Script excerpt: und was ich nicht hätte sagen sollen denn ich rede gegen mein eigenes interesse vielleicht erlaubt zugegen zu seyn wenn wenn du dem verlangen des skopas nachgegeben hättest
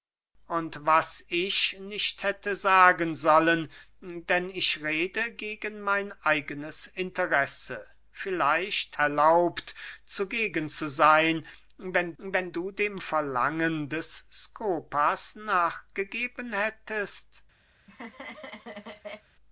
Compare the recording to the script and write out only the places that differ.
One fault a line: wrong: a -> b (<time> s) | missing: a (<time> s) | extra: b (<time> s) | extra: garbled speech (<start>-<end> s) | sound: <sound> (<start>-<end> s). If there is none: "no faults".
sound: laugh (17.7-19.3 s)